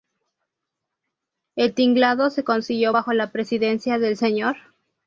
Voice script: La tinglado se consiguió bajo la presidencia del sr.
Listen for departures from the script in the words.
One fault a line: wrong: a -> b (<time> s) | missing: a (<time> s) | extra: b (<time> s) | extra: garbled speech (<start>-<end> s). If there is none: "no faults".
wrong: La -> El (1.6 s)